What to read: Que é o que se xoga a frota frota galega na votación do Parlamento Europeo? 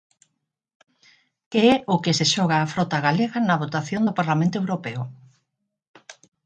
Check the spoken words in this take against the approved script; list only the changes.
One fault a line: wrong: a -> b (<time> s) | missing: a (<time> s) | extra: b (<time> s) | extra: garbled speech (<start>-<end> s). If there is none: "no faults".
missing: frota (3.0 s)